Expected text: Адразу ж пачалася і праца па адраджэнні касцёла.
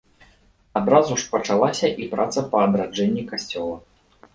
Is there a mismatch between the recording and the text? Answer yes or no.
no